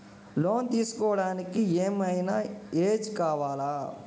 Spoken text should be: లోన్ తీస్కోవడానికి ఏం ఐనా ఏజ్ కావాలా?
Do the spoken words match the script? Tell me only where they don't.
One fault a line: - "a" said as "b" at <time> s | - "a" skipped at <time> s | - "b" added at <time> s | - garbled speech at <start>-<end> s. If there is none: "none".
none